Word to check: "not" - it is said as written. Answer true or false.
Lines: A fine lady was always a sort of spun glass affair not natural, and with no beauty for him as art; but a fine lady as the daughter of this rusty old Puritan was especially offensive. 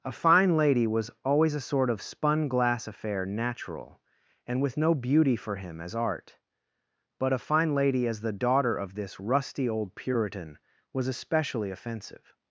false